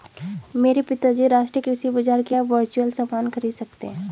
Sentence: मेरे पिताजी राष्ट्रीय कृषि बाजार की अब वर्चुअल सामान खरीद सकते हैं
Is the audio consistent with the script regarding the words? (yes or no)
yes